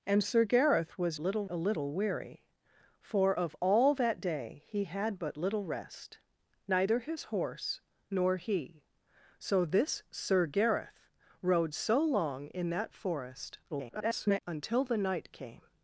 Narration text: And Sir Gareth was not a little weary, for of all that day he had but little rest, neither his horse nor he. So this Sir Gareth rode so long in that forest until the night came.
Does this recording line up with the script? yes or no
no